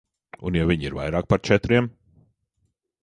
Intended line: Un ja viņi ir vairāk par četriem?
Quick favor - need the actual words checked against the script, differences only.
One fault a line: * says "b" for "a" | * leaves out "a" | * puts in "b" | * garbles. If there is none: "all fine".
all fine